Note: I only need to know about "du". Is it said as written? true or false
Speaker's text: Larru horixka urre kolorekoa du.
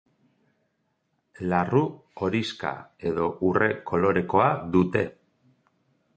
false